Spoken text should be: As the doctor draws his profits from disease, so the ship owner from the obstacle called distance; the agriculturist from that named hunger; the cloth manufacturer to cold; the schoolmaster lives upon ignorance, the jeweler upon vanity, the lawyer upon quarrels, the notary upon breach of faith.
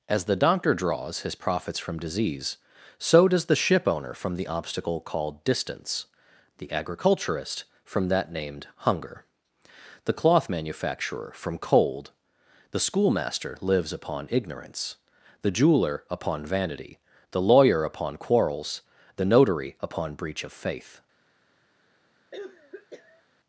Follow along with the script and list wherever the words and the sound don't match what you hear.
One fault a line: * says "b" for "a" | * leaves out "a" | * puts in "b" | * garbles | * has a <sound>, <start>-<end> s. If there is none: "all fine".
* puts in "does"
* says "from" for "to"
* has a cough, 22.3-23.2 s